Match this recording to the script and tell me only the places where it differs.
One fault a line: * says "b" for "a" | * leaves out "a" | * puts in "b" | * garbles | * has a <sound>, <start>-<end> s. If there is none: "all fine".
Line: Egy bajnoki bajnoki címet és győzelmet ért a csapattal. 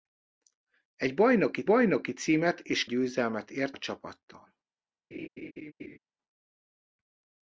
* has a laugh, 5.1-6.0 s